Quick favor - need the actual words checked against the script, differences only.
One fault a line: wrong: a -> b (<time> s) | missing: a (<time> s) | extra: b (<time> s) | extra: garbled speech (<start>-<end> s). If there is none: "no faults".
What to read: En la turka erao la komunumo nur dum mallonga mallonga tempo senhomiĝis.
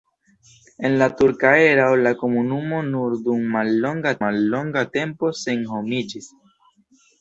no faults